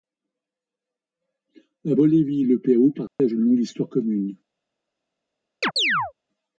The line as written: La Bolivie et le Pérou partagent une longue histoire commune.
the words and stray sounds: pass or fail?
fail